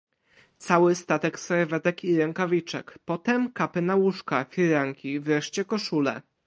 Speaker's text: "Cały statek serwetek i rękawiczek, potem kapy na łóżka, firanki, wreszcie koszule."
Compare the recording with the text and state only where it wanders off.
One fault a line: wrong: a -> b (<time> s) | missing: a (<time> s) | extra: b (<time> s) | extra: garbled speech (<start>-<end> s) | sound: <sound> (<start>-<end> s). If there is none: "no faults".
no faults